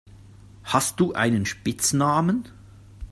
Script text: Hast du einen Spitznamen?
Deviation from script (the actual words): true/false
false